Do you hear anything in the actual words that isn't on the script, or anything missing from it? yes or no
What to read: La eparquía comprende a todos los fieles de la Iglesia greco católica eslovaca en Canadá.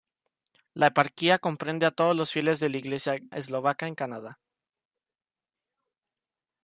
yes